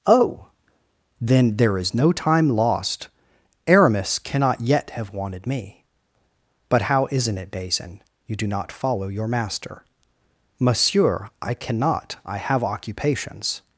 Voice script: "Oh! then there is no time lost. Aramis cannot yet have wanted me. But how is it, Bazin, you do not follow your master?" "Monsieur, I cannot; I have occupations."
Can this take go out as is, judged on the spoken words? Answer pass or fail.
fail